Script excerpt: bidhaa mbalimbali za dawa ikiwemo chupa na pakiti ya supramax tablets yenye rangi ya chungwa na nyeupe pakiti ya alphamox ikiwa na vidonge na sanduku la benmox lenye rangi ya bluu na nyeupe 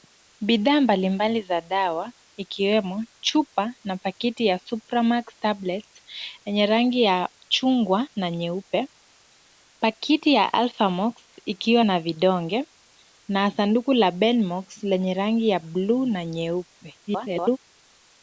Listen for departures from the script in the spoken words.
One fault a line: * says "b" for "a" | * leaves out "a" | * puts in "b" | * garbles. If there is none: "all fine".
* garbles